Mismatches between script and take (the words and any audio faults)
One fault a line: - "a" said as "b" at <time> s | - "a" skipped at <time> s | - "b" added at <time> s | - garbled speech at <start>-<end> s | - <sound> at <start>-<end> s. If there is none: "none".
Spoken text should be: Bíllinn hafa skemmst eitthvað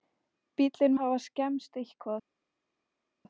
none